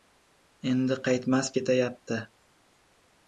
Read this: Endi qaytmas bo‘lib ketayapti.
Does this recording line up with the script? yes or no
no